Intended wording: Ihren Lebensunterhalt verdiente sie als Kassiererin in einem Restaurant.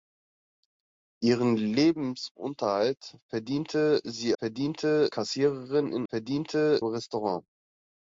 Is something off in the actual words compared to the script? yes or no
yes